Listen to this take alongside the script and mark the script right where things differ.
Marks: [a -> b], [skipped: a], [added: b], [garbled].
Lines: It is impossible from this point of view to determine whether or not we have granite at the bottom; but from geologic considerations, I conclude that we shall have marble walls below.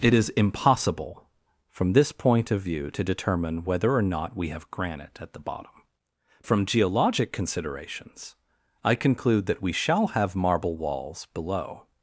It is impossible from this point of view to determine whether or not we have granite at the bottom; [skipped: but] from geologic considerations, I conclude that we shall have marble walls below.